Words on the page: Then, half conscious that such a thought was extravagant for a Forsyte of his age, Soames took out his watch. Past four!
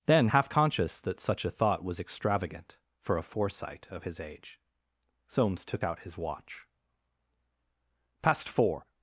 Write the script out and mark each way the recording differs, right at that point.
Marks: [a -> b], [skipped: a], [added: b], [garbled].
Then, half conscious that such a thought was extravagant for a Forsyte of his age, Soames took out his watch. Past four!